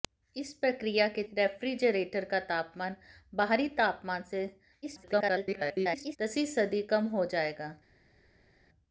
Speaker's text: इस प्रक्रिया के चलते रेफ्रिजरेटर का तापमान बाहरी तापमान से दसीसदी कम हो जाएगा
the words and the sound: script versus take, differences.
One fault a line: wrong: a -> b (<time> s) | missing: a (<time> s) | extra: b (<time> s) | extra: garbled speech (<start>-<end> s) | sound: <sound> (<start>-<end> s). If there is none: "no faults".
missing: चलते (1.2 s)
extra: garbled speech (4.8-6.2 s)